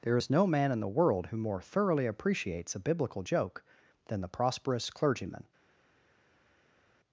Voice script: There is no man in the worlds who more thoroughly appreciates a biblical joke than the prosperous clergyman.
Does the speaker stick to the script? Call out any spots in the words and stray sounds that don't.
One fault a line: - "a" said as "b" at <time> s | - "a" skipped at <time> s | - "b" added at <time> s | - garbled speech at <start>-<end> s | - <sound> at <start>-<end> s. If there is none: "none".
- "worlds" said as "world" at 0.9 s